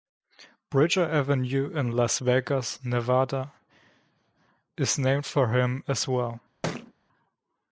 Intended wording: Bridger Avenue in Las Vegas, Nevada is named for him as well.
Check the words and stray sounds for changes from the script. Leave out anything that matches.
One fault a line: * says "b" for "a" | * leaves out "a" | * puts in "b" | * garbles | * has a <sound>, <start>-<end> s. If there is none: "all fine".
* has a thud, 6.6-6.9 s